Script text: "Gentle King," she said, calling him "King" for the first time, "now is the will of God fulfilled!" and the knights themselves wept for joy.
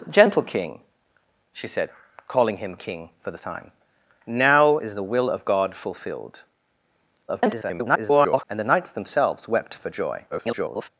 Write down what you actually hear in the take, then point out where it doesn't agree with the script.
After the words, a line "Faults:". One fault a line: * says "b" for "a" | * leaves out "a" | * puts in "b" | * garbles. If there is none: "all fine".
"Gentle King," she said, calling him "King" for the time, "now is the will of God fulfilled!" [garbled] and the knights themselves wept for joy. [garbled]
Faults:
* leaves out "first"
* garbles
* garbles